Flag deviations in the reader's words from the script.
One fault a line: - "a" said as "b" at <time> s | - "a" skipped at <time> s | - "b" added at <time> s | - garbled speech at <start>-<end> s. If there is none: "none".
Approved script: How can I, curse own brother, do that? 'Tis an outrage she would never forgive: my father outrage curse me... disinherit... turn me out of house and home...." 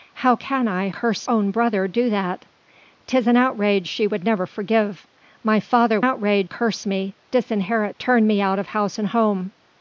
none